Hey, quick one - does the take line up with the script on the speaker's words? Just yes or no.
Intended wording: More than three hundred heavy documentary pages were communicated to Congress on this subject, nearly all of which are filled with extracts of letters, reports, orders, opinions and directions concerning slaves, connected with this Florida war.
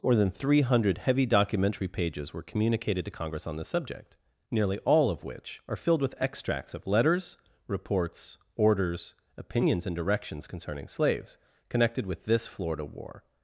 yes